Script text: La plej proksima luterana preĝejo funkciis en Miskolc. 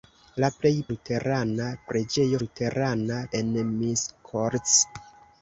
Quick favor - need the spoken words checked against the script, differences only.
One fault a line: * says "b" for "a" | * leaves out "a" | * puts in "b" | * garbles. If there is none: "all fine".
* leaves out "proksima"
* says "luterana" for "funkciis"